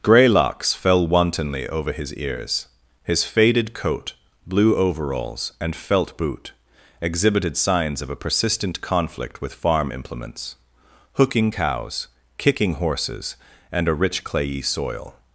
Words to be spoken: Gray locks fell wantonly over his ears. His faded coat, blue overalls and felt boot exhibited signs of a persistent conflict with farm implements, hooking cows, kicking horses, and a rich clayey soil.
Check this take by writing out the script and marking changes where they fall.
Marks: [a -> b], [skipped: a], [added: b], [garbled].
Gray locks fell wantonly over his ears. His faded coat, blue overalls and felt boot exhibited signs of a persistent conflict with farm implements, hooking cows, kicking horses, and a rich clayey soil.